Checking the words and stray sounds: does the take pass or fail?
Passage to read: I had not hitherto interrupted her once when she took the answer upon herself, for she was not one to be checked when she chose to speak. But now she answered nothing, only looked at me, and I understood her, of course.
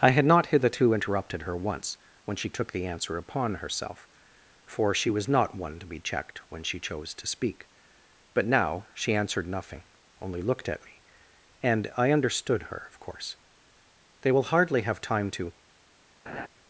fail